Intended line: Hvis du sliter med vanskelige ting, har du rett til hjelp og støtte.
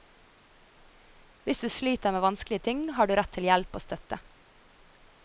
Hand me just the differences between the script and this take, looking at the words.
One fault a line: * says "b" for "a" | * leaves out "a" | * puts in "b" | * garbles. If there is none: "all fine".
all fine